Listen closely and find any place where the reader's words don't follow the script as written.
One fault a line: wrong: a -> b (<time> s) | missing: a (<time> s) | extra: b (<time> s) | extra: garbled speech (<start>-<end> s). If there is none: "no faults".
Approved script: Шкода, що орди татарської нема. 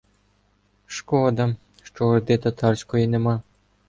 no faults